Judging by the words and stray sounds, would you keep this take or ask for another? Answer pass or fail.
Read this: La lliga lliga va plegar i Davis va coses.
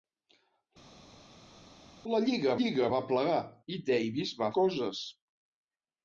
pass